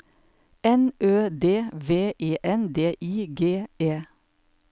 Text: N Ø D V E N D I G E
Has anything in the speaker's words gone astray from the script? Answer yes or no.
no